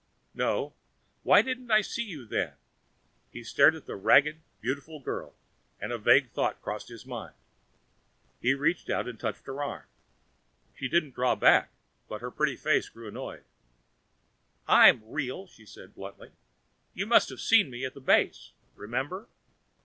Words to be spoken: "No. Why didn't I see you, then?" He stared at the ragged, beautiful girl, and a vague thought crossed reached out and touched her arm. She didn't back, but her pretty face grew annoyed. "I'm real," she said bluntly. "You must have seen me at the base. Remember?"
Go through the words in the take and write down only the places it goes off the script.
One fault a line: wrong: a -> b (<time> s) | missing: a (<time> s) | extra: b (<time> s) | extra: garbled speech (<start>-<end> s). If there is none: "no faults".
extra: his mind He (6.9 s)
extra: draw (11.1 s)